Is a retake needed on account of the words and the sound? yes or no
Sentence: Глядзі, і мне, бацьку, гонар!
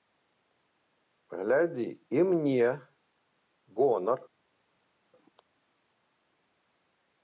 yes